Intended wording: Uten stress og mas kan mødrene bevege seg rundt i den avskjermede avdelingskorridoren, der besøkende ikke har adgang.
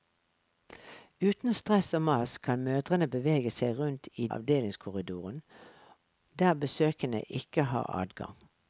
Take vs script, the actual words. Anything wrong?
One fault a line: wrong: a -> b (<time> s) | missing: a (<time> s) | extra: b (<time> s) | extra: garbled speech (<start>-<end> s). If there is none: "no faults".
missing: den avskjermede (4.3 s)